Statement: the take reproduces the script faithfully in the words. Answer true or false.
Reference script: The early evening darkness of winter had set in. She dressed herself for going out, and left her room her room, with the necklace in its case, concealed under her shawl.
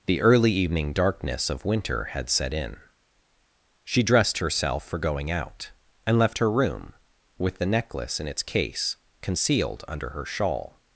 false